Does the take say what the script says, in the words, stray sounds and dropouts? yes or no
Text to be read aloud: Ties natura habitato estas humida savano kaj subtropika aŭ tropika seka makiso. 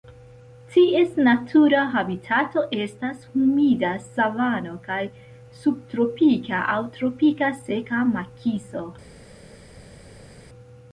yes